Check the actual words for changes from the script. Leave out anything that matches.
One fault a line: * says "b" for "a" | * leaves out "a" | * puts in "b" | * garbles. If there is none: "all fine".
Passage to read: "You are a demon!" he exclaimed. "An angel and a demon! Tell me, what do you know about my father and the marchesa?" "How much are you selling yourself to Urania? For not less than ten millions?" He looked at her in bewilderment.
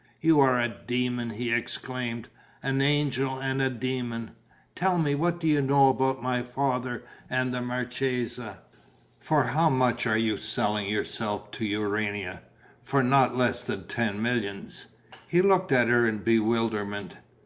* puts in "For"